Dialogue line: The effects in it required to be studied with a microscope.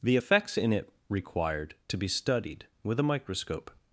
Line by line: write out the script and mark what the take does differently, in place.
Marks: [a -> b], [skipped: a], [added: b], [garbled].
The effects in it required to be studied with a microscope.